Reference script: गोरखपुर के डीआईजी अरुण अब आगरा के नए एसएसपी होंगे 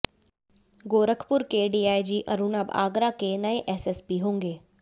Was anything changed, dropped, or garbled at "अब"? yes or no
no